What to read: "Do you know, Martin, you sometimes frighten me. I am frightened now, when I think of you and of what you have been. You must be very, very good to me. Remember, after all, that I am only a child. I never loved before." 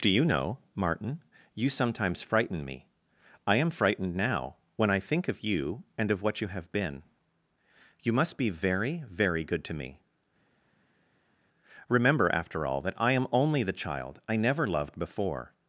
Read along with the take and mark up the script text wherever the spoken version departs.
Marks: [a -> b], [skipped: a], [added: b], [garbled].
"Do you know, Martin, you sometimes frighten me. I am frightened now, when I think of you and of what you have been. You must be very, very good to me. Remember, after all, that I am only [a -> the] child. I never loved before."